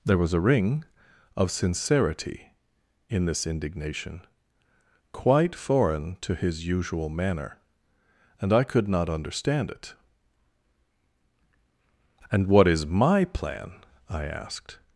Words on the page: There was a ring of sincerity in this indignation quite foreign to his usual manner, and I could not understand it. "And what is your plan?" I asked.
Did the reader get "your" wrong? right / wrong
wrong